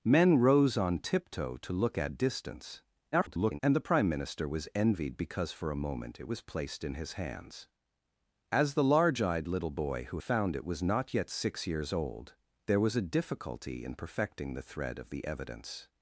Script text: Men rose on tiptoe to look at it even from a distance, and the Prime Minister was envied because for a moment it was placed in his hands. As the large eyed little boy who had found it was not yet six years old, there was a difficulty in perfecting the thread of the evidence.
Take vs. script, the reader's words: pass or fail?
fail